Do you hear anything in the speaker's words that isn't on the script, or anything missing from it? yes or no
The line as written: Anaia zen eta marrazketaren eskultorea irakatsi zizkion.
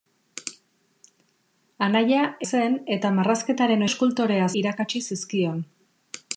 no